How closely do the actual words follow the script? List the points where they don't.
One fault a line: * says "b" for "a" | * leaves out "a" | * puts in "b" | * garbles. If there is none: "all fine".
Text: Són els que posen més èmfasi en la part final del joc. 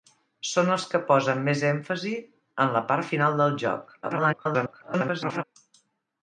* garbles